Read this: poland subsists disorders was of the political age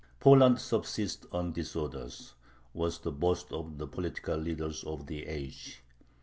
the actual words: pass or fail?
fail